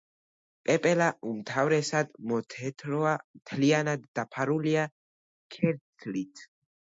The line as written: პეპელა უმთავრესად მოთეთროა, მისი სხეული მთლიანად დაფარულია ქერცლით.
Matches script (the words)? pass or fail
fail